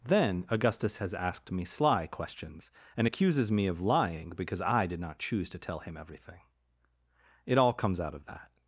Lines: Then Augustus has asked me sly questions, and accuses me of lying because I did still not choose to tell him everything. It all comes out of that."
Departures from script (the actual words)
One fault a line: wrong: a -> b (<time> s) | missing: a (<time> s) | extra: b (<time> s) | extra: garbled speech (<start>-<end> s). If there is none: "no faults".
missing: still (5.0 s)